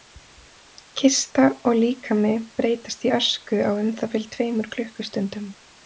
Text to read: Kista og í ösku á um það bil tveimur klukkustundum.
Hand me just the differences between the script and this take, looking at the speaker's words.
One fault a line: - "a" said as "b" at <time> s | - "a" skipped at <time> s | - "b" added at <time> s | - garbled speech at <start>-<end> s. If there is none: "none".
- "líkami breytast" added at 1.8 s